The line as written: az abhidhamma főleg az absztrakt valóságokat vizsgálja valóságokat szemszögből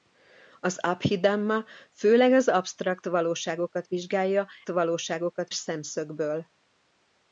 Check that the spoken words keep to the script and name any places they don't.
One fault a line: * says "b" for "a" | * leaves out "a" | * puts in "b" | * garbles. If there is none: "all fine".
all fine